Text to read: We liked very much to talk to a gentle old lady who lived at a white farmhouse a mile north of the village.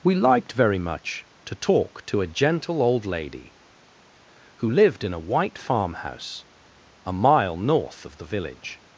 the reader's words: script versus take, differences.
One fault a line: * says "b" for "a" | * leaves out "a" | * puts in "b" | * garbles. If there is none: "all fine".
* says "in" for "at"